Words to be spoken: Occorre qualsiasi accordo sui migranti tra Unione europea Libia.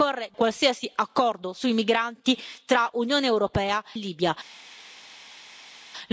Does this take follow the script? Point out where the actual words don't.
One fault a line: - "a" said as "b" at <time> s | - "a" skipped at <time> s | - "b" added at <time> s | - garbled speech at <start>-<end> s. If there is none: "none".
none